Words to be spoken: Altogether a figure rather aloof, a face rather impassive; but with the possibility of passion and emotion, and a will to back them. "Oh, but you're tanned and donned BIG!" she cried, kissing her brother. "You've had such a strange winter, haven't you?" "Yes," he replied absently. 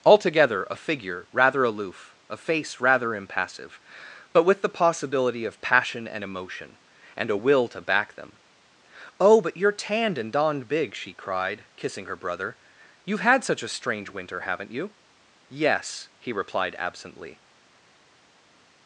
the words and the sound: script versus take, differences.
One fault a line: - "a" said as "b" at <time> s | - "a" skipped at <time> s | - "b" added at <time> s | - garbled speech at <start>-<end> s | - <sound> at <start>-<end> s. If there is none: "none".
none